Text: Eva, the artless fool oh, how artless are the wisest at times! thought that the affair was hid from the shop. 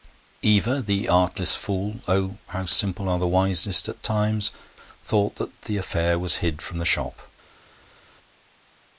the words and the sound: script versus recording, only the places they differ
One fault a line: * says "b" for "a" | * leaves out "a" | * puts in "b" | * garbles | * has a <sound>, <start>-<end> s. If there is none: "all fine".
* says "simple" for "artless"